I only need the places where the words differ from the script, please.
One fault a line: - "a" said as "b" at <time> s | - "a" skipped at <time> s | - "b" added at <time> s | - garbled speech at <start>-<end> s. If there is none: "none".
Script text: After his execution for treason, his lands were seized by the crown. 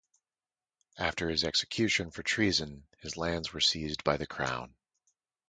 none